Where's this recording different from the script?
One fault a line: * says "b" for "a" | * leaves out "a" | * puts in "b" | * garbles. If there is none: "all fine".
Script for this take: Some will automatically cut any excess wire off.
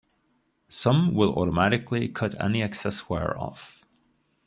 all fine